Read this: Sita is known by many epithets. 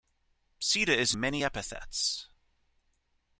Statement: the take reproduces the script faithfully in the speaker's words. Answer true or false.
false